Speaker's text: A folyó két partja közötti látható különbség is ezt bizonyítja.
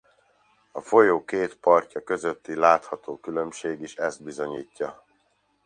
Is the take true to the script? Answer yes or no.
yes